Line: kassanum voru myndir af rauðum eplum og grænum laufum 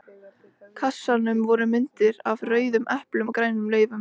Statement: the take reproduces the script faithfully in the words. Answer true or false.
true